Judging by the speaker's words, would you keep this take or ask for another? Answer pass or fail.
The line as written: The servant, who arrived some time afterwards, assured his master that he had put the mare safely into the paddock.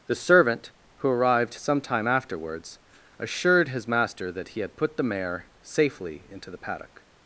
pass